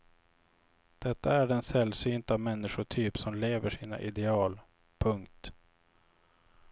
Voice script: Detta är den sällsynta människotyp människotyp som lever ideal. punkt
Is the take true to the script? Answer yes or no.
no